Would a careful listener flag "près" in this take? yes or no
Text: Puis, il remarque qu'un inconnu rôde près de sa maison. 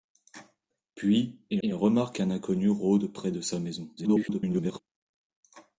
no